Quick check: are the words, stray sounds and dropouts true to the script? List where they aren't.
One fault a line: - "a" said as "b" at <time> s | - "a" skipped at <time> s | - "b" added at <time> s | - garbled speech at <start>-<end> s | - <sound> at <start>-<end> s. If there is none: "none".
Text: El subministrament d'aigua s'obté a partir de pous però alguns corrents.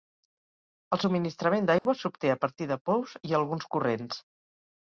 - dropout at 1.8-1.9 s
- "però" said as "i" at 3.3 s